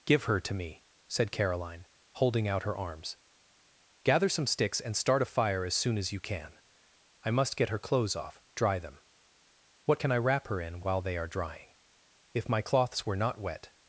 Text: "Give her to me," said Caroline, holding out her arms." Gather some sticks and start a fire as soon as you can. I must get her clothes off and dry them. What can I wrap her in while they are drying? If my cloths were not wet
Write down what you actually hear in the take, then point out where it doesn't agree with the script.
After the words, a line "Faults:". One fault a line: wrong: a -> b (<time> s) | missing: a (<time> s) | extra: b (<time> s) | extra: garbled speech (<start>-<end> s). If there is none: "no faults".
"Give her to me," said Caroline, holding out her arms." Gather some sticks and start a fire as soon as you can. I must get her clothes off dry them. What can I wrap her in while they are drying? If my cloths were not wet
Faults:
missing: and (8.4 s)